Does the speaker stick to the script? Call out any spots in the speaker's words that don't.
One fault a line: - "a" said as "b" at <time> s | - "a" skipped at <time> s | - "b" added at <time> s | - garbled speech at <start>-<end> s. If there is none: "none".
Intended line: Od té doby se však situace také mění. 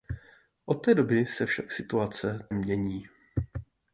- "také" skipped at 2.5 s